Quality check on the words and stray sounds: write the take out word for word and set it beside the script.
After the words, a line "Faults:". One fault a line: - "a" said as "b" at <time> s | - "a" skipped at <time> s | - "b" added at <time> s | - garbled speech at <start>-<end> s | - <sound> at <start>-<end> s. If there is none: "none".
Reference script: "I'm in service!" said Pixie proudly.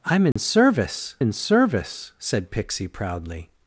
"I'm in service in service!" said Pixie proudly.
Faults:
- dropout at 0.3-0.4 s
- "in service" added at 1.2 s